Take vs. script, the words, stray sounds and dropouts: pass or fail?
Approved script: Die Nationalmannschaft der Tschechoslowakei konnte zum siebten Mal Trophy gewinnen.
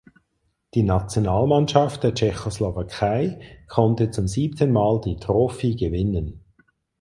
fail